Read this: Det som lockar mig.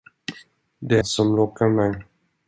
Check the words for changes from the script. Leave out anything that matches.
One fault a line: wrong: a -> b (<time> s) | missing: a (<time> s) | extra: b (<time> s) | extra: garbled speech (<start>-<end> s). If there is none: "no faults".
no faults